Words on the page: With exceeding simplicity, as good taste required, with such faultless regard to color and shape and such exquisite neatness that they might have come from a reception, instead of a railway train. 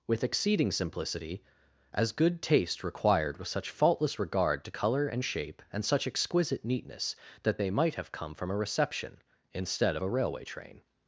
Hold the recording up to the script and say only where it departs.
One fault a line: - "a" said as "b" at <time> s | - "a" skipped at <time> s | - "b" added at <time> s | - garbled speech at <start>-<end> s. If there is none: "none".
none